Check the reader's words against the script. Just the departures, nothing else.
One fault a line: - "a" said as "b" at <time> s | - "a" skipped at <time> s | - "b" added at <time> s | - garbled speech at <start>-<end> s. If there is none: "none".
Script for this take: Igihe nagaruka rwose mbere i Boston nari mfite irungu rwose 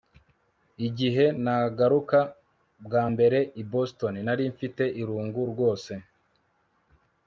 - "rwose" said as "bwa" at 2.8 s